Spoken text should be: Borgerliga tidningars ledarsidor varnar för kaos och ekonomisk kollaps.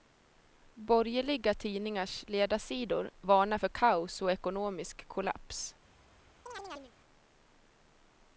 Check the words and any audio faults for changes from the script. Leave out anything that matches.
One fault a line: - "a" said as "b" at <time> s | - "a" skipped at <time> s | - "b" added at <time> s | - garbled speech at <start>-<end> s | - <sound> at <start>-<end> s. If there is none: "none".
- chirp at 6.5-7.0 s